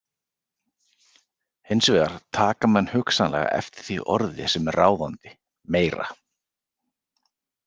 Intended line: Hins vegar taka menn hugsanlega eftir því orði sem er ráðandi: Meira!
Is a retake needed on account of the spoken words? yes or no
no